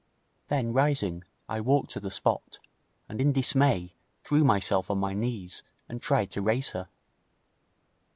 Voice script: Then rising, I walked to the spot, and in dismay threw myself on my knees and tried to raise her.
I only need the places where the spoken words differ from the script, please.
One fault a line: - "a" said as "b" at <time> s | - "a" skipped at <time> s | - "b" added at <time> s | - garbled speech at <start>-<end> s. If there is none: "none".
none